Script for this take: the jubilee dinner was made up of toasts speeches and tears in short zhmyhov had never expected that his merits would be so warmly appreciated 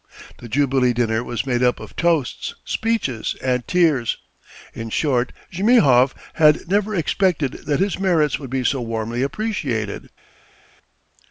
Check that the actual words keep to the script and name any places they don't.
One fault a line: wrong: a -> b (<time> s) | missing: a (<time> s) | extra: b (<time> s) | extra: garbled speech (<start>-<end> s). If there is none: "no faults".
no faults